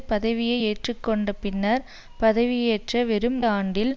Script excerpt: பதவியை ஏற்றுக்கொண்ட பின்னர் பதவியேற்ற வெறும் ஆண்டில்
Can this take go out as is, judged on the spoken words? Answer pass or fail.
pass